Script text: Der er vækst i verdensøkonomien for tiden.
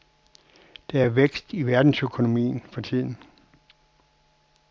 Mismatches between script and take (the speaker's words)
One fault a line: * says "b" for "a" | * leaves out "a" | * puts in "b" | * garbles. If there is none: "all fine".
all fine